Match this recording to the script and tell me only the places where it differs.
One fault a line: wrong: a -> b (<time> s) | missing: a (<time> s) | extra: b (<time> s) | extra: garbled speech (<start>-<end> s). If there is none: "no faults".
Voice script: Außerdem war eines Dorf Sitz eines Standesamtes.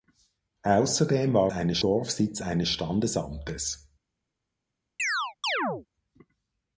no faults